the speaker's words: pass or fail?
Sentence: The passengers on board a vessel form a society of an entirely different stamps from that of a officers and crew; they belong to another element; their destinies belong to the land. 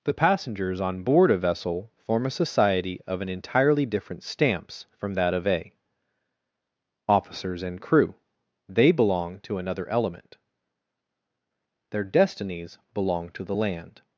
pass